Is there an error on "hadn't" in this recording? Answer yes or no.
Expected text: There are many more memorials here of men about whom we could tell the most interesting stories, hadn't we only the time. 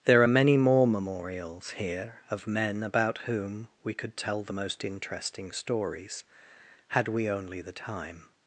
yes